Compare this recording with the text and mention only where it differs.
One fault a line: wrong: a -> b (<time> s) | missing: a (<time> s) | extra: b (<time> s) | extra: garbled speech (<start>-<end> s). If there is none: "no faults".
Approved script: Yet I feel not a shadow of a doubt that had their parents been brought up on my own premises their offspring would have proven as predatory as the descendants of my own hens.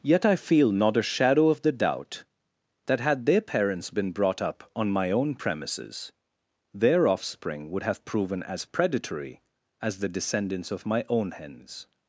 wrong: a -> the (1.6 s)